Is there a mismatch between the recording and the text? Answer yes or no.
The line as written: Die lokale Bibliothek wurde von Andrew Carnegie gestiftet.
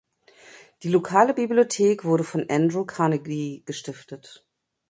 no